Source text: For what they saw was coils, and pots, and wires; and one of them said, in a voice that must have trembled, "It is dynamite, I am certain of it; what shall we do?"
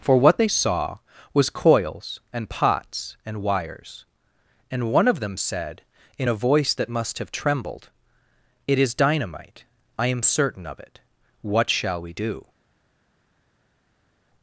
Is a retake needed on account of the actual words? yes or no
no